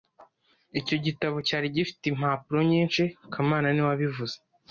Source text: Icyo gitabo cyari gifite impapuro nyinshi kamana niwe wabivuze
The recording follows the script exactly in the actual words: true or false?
true